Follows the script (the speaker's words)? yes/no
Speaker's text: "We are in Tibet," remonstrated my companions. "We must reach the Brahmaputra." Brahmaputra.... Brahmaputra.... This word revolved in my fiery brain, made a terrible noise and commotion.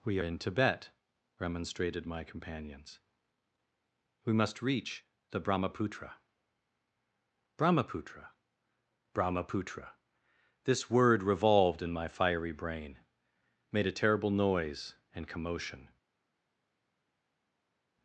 no